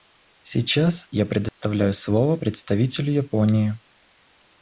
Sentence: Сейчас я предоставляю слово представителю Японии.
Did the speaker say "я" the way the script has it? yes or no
yes